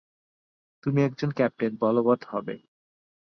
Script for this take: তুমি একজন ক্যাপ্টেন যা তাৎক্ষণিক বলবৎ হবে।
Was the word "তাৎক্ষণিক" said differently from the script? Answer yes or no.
yes